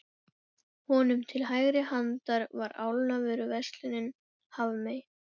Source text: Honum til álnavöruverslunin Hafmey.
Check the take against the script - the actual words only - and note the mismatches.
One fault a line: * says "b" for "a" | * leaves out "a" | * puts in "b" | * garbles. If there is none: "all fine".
* puts in "hægri handar var"